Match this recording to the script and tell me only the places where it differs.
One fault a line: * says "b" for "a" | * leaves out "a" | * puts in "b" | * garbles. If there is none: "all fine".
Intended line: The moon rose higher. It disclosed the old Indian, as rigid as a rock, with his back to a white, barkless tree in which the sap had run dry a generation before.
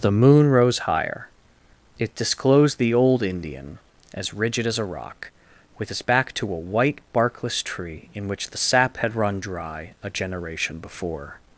all fine